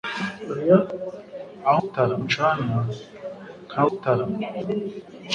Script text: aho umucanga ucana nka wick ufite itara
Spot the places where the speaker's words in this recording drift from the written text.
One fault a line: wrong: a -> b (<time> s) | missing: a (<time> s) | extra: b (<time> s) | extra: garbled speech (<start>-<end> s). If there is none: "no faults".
wrong: umucanga -> itara (1.8 s)
missing: wick ufite (3.8 s)